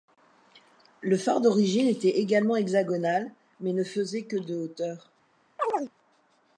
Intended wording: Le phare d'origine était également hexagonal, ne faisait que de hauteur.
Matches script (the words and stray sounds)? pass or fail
fail